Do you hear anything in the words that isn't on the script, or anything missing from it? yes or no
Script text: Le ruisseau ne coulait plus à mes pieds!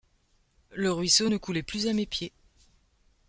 no